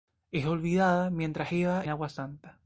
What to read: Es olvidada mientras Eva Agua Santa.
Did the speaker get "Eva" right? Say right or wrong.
right